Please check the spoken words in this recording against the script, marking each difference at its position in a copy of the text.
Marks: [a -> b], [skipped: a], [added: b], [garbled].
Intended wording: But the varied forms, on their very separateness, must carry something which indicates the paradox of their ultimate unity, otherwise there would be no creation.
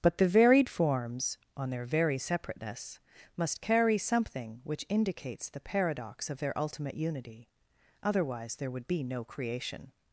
But the varied forms, on their very separateness, must carry something which indicates the paradox of their ultimate unity, otherwise there would be no creation.